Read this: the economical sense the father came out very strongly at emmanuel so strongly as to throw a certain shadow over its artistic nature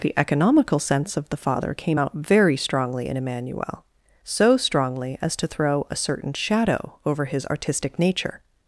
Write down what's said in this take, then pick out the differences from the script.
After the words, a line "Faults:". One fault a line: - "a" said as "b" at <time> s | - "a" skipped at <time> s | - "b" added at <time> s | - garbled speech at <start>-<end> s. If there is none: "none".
the economical sense of the father came out very strongly in emmanuel so strongly as to throw a certain shadow over his artistic nature
Faults:
- "of" added at 1.1 s
- "at" said as "in" at 3.1 s
- "its" said as "his" at 7.3 s